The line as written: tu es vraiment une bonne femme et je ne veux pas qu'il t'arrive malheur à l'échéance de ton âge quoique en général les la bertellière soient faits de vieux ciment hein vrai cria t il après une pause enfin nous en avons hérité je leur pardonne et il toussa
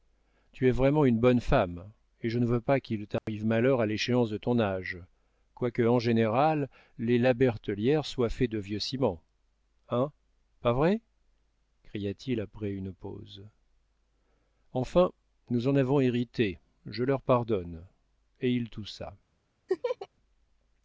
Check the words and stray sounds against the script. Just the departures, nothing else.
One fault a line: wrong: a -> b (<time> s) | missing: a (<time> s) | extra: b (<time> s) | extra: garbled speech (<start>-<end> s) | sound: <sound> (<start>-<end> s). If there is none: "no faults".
sound: dropout (3.2-3.3 s)
extra: pas (10.6 s)
sound: laugh (19.7-20.1 s)